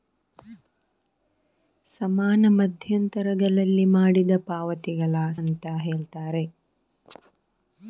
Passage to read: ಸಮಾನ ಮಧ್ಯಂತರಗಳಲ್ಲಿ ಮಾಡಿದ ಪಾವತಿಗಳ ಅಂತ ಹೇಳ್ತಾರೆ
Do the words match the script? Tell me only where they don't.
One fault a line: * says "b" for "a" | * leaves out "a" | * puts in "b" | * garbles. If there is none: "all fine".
all fine